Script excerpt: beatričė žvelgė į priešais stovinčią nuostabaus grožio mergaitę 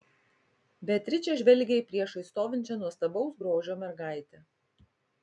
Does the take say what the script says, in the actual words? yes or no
yes